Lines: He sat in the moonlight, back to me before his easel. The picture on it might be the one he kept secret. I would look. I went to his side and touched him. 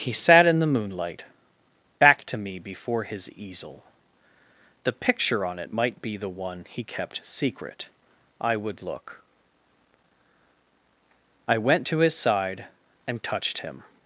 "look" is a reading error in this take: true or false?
false